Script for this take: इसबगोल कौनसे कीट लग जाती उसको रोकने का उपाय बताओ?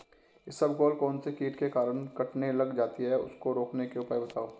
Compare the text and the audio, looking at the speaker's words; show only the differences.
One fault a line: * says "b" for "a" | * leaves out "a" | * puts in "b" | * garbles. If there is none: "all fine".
* puts in "के कारण कटने"
* puts in "है"
* says "के" for "का"